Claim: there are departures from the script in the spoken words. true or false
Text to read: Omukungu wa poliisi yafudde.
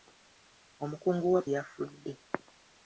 true